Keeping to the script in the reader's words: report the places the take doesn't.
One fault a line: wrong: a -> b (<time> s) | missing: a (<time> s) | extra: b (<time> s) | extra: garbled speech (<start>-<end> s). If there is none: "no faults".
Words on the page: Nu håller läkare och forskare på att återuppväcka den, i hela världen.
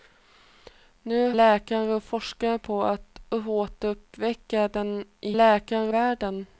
missing: håller (1.3 s)
wrong: hela -> läkare (5.3 s)